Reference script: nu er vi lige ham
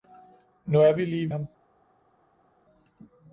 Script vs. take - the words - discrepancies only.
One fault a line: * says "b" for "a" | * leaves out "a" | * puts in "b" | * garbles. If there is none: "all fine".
all fine